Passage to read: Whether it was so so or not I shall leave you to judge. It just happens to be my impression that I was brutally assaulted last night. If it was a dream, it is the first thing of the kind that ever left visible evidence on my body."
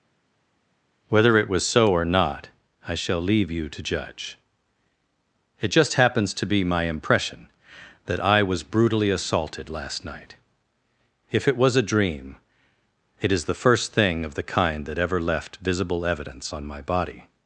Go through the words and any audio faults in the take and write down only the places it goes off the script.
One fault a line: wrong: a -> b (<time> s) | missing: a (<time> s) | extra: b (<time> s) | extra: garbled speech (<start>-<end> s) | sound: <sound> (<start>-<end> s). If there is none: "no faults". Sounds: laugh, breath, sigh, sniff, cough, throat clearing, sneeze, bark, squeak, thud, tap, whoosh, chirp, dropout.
missing: so (1.9 s)